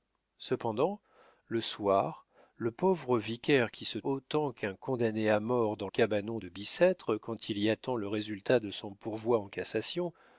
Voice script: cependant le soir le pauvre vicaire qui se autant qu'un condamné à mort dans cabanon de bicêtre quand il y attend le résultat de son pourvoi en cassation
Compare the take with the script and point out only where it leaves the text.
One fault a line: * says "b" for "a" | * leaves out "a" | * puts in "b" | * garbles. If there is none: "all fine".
all fine